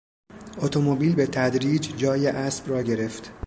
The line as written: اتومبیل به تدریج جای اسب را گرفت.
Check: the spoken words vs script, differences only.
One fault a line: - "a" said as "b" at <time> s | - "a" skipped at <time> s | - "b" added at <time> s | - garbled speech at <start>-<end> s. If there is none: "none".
none